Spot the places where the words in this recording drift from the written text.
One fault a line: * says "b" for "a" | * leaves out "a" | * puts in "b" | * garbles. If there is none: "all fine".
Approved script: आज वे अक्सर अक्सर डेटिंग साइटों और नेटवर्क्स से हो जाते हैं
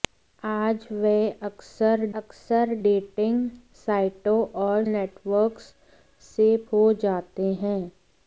all fine